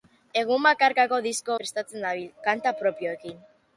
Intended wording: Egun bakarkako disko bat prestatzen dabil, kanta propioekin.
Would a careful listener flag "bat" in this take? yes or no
yes